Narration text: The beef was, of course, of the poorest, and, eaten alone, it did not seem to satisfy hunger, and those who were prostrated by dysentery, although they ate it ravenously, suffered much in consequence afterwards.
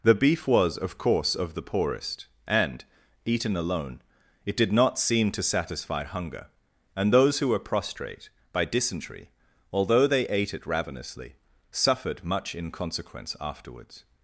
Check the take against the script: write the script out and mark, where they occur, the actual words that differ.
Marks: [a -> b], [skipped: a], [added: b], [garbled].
The beef was, of course, of the poorest, and, eaten alone, it did not seem to satisfy hunger, and those who were [prostrated -> prostrate] by dysentery, although they ate it ravenously, suffered much in consequence afterwards.